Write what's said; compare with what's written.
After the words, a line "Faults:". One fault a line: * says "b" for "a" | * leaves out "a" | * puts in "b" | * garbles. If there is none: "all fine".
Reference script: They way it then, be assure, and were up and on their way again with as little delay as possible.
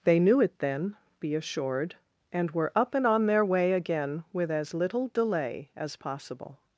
They knew it then, be assured, and were up and on their way again with as little delay as possible.
Faults:
* says "knew" for "way"
* says "assured" for "assure"